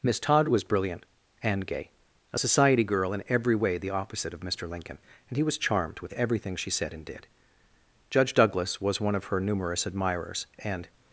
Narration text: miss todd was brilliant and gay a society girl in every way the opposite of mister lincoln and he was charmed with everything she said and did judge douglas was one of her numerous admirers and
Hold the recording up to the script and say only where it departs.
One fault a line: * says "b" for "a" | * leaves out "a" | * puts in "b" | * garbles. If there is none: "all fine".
all fine